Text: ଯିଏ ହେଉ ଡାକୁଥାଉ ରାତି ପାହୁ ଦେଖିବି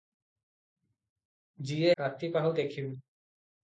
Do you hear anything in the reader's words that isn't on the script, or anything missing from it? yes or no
yes